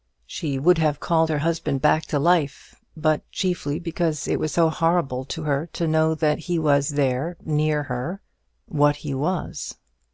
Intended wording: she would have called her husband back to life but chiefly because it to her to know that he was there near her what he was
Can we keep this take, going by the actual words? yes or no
no